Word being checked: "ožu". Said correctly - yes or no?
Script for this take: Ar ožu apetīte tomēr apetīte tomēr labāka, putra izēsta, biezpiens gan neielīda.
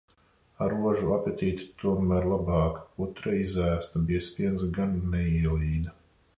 yes